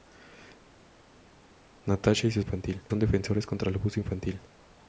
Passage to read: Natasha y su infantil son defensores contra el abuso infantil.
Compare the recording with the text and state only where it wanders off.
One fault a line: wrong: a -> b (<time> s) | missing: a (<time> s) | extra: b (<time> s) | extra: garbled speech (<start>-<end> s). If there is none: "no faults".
no faults